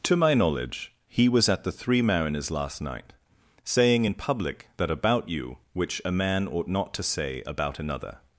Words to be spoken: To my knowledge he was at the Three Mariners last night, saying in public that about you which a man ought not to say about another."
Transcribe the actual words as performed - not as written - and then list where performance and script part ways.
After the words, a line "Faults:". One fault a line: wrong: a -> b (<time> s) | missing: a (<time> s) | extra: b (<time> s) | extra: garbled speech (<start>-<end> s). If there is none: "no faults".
To my knowledge he was at the Three Mariners last night, saying in public that about you which a man ought not to say about another."
Faults:
no faults